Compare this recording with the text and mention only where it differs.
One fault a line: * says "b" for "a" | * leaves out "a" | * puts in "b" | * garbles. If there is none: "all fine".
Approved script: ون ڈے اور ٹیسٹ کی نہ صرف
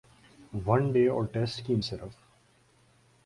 * leaves out "نہ"